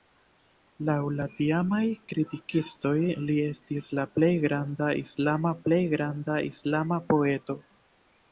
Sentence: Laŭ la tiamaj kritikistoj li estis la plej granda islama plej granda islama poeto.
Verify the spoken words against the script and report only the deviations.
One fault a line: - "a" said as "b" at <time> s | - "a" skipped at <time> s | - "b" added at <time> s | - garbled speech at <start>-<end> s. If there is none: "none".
none